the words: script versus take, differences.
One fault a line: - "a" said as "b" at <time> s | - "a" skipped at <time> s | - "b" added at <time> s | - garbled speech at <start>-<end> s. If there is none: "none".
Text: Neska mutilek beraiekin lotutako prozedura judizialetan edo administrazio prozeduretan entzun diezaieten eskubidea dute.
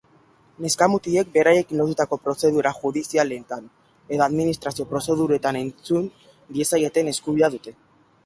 none